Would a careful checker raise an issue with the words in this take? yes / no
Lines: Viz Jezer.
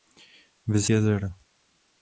no